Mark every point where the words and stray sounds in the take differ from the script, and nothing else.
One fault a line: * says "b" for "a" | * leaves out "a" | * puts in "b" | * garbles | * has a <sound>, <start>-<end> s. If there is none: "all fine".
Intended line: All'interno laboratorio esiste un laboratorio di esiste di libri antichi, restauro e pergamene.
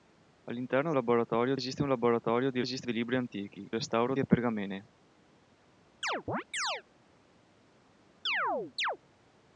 * has a chirp, 6.0-6.8 s
* has a chirp, 8.3-9.0 s